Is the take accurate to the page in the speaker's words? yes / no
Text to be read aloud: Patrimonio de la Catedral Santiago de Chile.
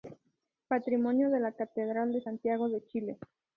no